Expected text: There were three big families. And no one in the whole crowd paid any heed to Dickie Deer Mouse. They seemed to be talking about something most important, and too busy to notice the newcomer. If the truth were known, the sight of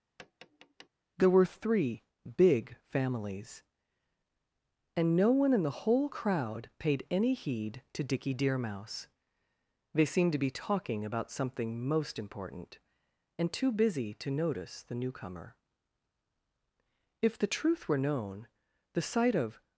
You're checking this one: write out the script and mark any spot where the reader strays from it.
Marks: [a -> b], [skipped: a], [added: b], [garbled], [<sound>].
[tap] There were three big families. And no one in the whole crowd paid any heed to Dickie Deer Mouse. They seemed to be talking about something most important, and too busy to notice the newcomer. If the truth were known, the sight of